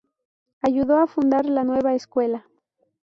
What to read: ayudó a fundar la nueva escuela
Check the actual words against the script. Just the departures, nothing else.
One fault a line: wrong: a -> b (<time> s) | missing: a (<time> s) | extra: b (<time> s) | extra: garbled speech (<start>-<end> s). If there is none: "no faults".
no faults